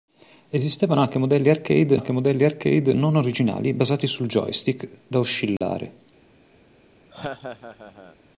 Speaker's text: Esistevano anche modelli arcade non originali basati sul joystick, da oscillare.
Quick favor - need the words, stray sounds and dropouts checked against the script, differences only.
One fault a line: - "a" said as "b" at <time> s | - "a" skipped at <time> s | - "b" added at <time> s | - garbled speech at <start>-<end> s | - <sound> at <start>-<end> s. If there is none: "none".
- "anche modelli arcade" added at 1.9 s
- dropout at 5.6-5.6 s
- laugh at 7.1-8.2 s